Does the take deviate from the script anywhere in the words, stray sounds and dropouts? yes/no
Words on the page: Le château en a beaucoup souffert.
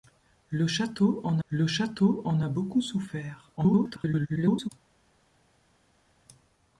yes